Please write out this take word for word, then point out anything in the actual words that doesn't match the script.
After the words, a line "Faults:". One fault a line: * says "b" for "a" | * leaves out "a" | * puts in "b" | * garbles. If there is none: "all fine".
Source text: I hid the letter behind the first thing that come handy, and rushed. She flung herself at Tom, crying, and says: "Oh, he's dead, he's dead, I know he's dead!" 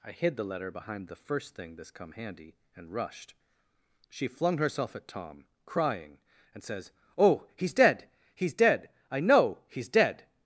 I hid the letter behind the first thing this come handy, and rushed. She flung herself at Tom, crying, and says: "Oh, he's dead, he's dead, I know he's dead!"
Faults:
* says "this" for "that"